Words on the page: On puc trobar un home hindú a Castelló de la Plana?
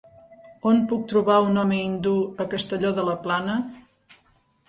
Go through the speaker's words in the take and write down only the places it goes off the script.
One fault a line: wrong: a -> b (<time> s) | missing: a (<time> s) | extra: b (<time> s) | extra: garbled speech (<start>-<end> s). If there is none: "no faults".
no faults